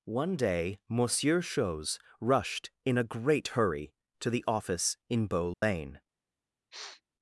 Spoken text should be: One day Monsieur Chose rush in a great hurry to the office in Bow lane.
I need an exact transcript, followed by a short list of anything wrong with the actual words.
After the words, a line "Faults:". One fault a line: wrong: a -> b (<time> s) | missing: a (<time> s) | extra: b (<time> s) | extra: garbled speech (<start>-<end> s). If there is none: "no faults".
One day Monsieur Chose rushed in a great hurry to the office in Bow lane.
Faults:
wrong: rush -> rushed (2.2 s)